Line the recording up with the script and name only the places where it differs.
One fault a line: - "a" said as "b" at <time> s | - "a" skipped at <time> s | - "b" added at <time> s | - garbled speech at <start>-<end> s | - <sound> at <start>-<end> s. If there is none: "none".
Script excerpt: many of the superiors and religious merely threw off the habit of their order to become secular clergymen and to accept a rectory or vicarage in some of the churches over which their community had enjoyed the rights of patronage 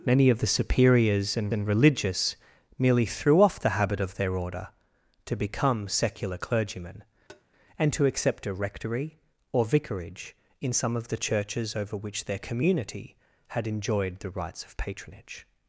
- "and" added at 1.5 s
- tap at 7.3-7.4 s